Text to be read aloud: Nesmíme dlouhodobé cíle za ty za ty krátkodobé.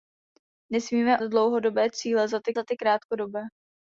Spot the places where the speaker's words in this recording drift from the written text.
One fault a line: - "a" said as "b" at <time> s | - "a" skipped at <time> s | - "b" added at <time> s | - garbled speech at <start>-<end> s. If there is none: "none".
none